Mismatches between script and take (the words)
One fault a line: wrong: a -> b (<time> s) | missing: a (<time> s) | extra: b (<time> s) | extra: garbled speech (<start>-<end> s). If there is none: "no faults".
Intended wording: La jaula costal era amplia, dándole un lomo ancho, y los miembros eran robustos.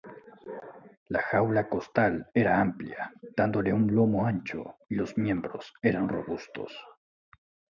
no faults